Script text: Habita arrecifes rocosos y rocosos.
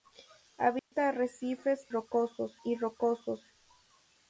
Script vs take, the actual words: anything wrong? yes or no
no